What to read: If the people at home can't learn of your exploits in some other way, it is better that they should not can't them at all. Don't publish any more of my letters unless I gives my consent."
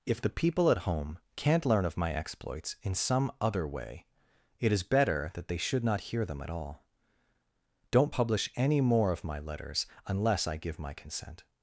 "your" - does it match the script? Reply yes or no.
no